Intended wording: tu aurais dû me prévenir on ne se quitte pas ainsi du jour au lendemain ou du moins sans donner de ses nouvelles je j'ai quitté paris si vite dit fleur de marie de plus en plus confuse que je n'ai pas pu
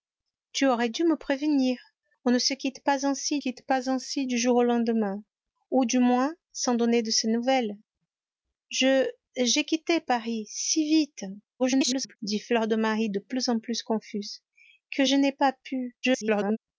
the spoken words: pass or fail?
fail